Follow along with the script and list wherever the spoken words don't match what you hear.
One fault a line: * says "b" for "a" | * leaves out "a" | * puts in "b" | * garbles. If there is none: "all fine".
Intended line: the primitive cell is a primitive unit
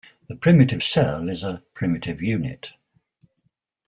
all fine